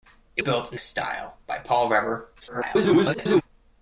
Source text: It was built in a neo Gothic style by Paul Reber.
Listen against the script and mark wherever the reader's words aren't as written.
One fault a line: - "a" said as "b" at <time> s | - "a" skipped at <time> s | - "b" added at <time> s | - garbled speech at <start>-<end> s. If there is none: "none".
- "was" skipped at 0.4 s
- "a neo Gothic" skipped at 0.8 s
- garbled speech at 2.4-3.4 s